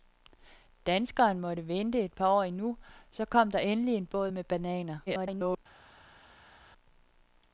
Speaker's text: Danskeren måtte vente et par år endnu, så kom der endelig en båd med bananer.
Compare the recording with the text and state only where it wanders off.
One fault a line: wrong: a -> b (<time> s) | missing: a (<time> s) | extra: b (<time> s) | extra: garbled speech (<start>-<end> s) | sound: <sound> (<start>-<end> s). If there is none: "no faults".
extra: garbled speech (5.1-5.6 s)